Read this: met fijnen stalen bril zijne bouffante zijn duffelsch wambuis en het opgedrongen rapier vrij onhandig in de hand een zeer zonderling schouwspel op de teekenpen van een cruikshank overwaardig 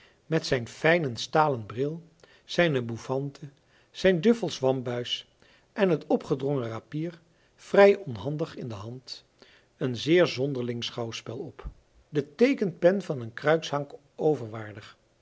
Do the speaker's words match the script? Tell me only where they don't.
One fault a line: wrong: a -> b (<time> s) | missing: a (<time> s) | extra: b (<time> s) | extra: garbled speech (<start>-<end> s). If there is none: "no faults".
extra: zijn (0.5 s)